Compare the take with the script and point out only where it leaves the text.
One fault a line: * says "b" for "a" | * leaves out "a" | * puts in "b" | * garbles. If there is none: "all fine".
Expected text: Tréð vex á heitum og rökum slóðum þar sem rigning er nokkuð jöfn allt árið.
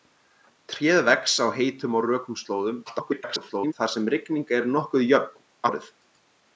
* garbles
* leaves out "allt"